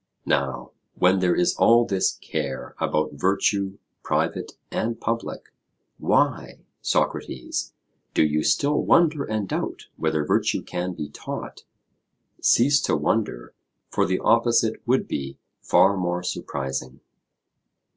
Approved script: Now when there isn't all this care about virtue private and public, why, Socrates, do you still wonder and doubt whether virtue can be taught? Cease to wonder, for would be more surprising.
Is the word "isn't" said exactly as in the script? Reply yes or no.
no